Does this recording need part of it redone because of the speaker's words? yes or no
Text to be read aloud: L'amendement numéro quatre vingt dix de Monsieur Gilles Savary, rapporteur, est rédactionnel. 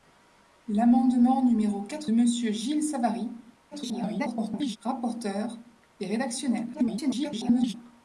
yes